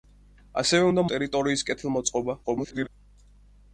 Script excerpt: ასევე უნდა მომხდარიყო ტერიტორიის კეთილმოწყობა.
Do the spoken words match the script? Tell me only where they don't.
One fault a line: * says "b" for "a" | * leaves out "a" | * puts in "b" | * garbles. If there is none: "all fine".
* leaves out "მომხდარიყო"
* garbles